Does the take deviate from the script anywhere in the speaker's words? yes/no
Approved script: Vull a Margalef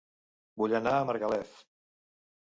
yes